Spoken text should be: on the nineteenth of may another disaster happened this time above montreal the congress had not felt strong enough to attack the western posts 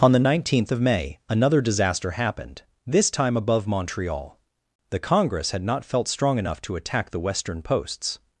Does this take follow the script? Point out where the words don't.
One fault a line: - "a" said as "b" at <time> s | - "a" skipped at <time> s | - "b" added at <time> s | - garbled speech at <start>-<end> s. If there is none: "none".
none